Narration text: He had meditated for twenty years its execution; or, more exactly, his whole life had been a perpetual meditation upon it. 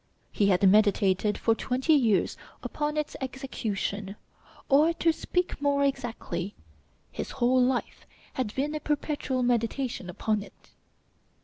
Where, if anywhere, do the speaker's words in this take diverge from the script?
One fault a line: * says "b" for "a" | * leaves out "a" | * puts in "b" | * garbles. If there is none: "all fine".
* puts in "upon"
* puts in "to speak"